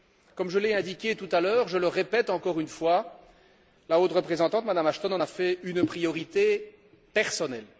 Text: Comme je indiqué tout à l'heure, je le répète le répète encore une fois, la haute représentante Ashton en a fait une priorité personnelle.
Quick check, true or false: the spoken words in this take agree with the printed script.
false